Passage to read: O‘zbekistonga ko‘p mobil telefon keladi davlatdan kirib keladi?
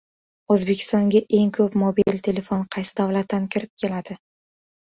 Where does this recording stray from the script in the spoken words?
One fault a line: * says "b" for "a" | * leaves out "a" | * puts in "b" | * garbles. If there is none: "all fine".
* puts in "eng"
* says "qaysi" for "keladi"